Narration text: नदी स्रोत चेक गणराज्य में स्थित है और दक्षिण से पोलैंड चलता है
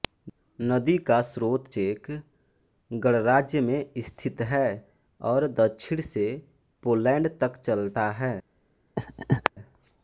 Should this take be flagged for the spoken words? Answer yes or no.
yes